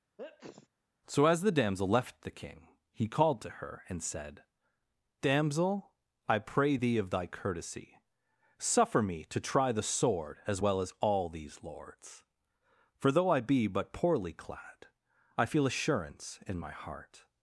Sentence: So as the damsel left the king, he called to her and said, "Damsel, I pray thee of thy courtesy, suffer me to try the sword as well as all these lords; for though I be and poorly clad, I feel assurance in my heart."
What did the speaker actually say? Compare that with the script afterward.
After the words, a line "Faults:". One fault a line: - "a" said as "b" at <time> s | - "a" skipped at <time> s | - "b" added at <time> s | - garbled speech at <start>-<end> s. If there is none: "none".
So as the damsel left the king, he called to her and said, "Damsel, I pray thee of thy courtesy, suffer me to try the sword as well as all these lords; for though I be but poorly clad, I feel assurance in my heart."
Faults:
- "and" said as "but" at 13.7 s